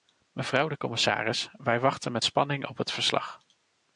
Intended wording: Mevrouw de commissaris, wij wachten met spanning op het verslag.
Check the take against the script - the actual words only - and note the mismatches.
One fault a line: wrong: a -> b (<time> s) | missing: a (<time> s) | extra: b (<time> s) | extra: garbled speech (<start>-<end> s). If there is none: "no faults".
no faults